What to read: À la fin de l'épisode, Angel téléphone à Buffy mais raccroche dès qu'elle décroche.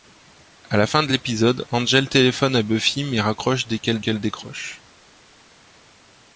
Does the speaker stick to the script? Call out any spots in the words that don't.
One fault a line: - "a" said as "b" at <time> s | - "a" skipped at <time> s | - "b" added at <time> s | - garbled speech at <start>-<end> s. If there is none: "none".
- "qu'elle" added at 4.0 s